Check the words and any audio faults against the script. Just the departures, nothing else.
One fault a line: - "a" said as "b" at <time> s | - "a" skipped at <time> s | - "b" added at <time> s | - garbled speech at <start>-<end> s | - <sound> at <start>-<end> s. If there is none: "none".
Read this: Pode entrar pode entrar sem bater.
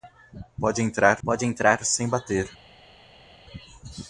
none